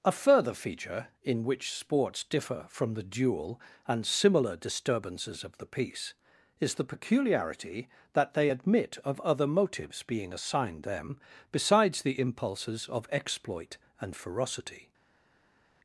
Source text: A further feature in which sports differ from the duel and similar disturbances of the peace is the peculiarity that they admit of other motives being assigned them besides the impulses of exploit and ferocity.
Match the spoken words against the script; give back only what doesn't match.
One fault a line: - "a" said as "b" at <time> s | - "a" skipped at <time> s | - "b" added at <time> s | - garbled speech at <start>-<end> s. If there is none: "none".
none